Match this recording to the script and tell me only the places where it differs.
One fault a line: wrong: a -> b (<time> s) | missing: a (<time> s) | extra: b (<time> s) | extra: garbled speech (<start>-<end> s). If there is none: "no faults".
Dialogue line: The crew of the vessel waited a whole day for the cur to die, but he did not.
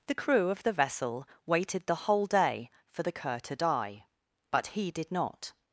wrong: a -> the (1.9 s)